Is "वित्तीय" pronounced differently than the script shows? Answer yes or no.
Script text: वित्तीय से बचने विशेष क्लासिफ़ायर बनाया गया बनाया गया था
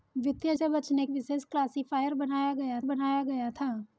no